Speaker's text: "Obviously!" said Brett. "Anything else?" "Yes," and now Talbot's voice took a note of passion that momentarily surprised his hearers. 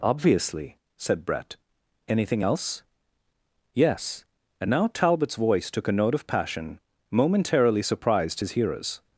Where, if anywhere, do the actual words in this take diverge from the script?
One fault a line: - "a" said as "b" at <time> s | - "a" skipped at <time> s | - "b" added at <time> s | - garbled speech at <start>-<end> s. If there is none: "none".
- "that" skipped at 6.8 s